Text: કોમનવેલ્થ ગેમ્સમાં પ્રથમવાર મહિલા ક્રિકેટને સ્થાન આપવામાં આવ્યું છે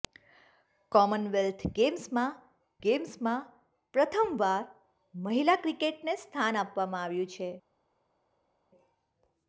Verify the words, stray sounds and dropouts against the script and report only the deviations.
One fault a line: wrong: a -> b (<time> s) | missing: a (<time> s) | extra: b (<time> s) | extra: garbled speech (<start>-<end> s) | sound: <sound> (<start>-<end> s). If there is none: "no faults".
extra: ગેમ્સમાં (2.8 s)